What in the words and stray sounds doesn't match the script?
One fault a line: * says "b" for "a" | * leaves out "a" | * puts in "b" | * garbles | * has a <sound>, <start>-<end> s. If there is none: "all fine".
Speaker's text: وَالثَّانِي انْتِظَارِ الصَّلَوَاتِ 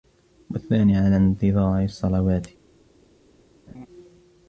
* puts in "عَلَى"
* has a laugh, 3.7-3.9 s